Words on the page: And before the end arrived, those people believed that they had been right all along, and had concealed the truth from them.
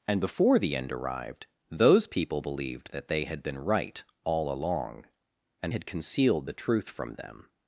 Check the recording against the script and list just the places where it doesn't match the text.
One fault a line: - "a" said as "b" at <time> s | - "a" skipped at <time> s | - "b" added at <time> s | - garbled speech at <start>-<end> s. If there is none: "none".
none